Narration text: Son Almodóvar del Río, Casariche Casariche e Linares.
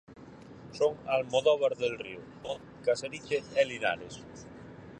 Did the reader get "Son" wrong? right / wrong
right